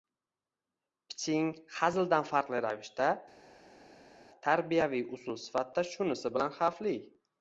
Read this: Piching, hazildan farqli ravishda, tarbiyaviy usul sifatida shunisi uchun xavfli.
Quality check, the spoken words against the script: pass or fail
fail